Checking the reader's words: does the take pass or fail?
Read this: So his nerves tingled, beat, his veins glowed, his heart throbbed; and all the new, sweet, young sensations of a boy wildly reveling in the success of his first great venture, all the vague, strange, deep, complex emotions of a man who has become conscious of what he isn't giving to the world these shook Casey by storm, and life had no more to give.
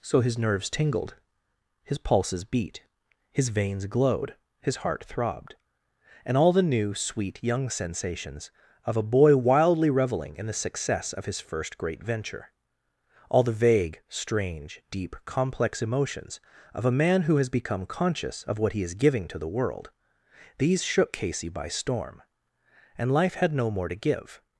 fail